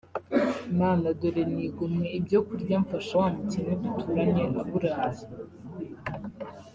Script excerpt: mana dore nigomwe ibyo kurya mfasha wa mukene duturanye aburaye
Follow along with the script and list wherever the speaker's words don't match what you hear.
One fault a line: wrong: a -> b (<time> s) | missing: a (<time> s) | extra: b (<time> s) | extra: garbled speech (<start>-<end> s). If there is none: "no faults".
no faults